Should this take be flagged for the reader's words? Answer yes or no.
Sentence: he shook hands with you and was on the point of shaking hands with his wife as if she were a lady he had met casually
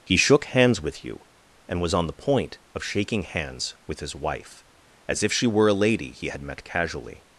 no